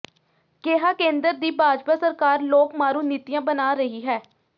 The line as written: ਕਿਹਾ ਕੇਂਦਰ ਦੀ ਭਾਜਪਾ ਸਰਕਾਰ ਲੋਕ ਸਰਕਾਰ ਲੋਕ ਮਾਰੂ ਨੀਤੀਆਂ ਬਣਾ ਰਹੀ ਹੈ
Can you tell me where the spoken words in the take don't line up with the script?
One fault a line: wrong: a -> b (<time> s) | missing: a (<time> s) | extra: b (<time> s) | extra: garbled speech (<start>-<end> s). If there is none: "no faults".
missing: ਸਰਕਾਰ ਲੋਕ (2.7 s)